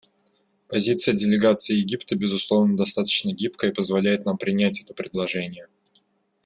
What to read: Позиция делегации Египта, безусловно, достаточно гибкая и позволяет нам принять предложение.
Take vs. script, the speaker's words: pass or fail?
fail